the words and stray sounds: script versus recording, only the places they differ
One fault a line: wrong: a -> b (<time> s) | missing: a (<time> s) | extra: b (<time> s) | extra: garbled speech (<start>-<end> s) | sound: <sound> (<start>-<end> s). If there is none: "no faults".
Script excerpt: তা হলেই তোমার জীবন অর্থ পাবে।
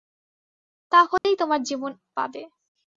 sound: dropout (1.2-1.2 s)
missing: অর্থ (1.9 s)